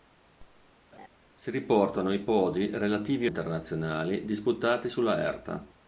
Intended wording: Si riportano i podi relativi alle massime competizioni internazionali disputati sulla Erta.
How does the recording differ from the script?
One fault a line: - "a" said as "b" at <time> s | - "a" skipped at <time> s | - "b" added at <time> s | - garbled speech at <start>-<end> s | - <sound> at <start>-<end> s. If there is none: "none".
- laugh at 0.9-1.1 s
- "alle massime competizioni" skipped at 3.3 s